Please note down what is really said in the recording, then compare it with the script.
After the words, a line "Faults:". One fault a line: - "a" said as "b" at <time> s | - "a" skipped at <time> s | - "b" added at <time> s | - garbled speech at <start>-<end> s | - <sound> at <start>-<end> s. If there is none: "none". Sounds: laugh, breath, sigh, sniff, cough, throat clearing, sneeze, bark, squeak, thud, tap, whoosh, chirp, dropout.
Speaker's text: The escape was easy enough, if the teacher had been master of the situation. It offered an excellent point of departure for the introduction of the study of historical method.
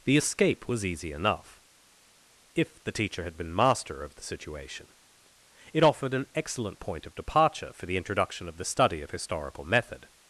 The escape was easy enough, if the teacher had been master of the situation. It offered an excellent point of departure for the introduction of the study of historical method.
Faults:
none